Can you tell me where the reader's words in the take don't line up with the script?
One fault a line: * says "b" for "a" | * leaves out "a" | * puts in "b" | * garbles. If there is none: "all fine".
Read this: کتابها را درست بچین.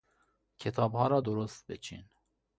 all fine